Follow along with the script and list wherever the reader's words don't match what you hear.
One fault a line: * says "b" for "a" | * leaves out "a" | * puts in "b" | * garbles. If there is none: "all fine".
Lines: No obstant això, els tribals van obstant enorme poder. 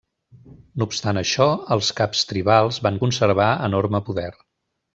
* puts in "caps"
* says "conservar" for "obstant"